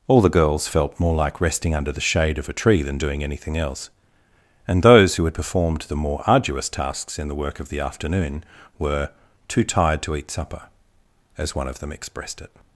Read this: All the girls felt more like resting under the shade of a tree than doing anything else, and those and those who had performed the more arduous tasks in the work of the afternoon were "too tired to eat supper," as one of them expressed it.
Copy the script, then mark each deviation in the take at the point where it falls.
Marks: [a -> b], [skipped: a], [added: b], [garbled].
All the girls felt more like resting under the shade of a tree than doing anything else, and those [skipped: and those] who had performed the more arduous tasks in the work of the afternoon were "too tired to eat supper," as one of them expressed it.